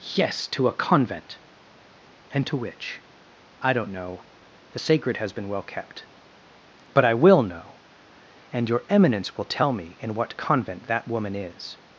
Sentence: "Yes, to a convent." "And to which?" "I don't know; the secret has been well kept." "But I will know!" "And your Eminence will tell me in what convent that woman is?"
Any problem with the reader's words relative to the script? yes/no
yes